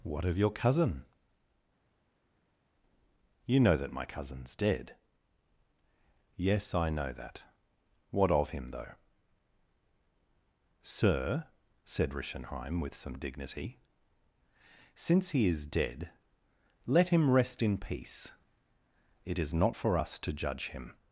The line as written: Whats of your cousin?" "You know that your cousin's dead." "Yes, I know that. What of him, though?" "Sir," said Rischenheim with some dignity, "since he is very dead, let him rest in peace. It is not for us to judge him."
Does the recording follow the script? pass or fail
fail